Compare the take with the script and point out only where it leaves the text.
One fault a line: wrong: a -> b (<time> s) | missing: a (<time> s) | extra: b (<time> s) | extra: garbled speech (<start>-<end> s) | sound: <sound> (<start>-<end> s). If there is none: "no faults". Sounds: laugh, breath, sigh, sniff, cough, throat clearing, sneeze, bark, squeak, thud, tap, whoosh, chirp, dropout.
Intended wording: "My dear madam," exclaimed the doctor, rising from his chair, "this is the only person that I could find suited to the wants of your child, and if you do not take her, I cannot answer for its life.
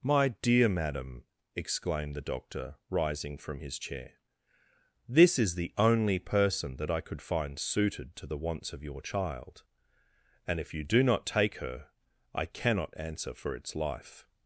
no faults